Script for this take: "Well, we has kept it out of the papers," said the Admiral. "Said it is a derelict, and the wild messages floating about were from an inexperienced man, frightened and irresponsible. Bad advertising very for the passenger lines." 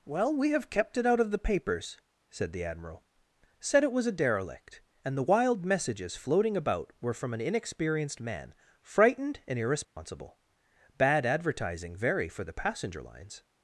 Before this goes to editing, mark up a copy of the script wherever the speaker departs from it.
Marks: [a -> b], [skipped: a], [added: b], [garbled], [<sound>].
"Well, we [has -> have] kept it out of the papers," said the Admiral. "Said it [is -> was] a derelict, and the wild messages floating about were from an inexperienced man, frightened and irresponsible. [dropout] Bad advertising very for the passenger lines."